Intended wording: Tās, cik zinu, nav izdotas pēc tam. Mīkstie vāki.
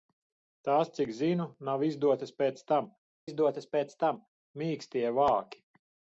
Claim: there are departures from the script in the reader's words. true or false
true